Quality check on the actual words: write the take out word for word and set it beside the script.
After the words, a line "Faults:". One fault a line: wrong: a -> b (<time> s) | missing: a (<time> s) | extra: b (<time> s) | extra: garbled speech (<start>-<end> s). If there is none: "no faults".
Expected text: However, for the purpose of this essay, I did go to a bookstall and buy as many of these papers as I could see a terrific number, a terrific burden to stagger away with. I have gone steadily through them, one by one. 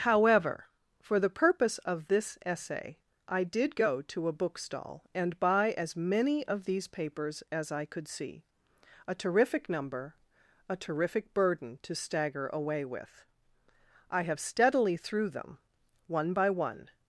However, for the purpose of this essay, I did go to a bookstall and buy as many of these papers as I could see a terrific number, a terrific burden to stagger away with. I have steadily through them, one by one.
Faults:
missing: gone (14.4 s)